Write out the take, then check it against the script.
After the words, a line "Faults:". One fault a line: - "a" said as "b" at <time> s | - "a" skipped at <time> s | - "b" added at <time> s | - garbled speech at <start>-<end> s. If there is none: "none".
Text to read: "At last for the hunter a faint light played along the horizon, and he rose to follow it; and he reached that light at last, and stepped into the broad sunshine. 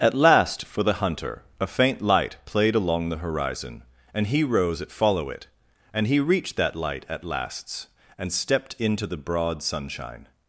"At last for the hunter a faint light played along the horizon, and he rose at follow it; and he reached that light at lasts, and stepped into the broad sunshine.
Faults:
- "to" said as "at" at 4.8 s
- "last" said as "lasts" at 7.2 s